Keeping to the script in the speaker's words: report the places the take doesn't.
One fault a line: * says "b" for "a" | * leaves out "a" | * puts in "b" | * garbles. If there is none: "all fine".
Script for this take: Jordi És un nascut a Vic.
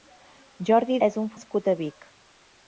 all fine